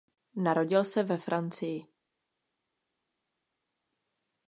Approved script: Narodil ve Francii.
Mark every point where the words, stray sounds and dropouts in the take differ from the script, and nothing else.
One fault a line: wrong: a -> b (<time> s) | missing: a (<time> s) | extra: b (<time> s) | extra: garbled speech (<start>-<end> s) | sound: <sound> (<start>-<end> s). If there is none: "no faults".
extra: se (0.8 s)